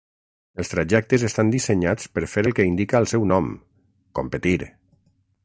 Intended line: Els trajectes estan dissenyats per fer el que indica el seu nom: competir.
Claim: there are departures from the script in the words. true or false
false